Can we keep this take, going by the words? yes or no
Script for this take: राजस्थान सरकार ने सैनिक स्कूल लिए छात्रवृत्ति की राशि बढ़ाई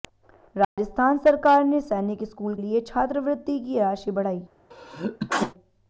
yes